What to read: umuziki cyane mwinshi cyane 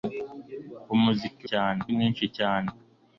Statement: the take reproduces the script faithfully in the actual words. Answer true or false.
true